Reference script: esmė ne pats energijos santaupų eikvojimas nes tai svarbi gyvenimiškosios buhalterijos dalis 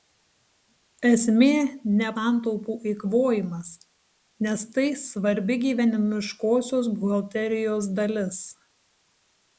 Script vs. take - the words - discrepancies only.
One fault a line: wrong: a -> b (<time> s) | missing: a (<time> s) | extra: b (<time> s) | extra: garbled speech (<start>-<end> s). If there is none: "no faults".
missing: pats energijos (2.1 s)